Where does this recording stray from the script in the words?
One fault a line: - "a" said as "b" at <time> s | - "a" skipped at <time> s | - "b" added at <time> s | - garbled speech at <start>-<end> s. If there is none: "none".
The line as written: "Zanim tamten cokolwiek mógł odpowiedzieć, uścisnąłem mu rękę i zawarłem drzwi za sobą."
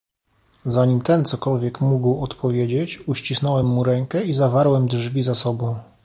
- "tamten" said as "ten" at 1.0 s